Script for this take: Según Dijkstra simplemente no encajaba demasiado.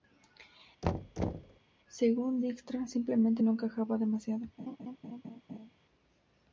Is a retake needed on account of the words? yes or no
no